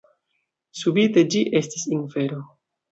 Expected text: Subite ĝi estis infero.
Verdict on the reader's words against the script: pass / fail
pass